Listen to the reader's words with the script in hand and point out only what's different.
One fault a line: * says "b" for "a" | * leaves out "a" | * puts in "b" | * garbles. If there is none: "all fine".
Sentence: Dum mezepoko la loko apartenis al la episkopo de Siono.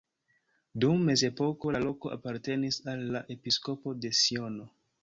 all fine